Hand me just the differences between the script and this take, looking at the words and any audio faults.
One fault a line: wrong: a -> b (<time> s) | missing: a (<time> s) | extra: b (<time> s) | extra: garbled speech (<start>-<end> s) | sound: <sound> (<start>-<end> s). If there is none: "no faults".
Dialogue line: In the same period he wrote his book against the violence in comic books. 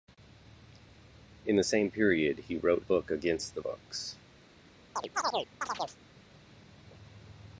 missing: his (2.8 s)
missing: violence in comic (3.6 s)
sound: chirp (5.0-6.0 s)